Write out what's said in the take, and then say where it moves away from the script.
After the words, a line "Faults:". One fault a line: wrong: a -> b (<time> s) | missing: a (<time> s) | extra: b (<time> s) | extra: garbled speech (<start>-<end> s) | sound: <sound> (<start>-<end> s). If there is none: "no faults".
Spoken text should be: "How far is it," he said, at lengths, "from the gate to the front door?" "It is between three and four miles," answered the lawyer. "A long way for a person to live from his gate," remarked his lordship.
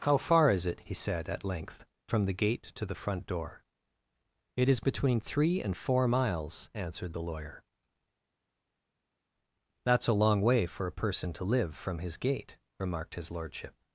"How far is it," he said, at length, "from the gate to the front door?" "It is between three and four miles," answered the lawyer. "That's a long way for a person to live from his gate," remarked his lordship.
Faults:
wrong: lengths -> length (1.4 s)
extra: That's (9.8 s)